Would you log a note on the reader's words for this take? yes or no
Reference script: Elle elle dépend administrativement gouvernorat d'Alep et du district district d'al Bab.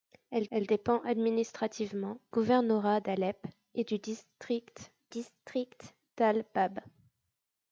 no